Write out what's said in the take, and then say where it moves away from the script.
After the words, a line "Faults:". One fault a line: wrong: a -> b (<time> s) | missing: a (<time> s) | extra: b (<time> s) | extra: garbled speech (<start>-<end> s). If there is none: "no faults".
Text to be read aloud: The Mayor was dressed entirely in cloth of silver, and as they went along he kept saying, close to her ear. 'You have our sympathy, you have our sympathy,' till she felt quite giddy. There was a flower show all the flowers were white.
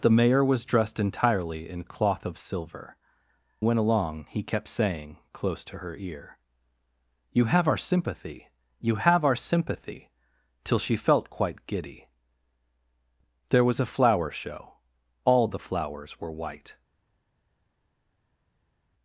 The Mayor was dressed entirely in cloth of silver, went along he kept saying, close to her ear. 'You have our sympathy, you have our sympathy,' till she felt quite giddy. There was a flower show all the flowers were white.
Faults:
missing: and as they (3.0 s)